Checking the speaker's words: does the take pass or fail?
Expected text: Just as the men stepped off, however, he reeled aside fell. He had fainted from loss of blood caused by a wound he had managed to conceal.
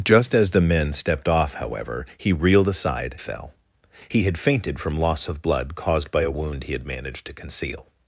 pass